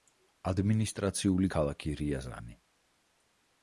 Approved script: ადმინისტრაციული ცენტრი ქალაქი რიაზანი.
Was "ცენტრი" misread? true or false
true